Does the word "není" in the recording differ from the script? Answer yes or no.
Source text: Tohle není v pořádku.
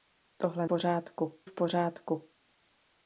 yes